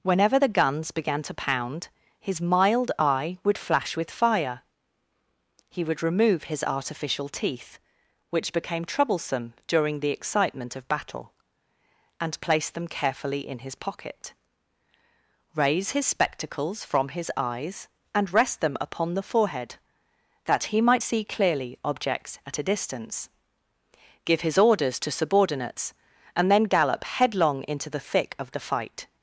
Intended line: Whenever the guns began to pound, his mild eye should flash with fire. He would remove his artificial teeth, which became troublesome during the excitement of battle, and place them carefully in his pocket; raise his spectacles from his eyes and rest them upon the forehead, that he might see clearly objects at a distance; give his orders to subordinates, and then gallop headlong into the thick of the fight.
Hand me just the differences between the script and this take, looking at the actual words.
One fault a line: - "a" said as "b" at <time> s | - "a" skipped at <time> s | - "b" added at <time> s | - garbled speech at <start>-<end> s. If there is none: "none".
- "should" said as "would" at 3.4 s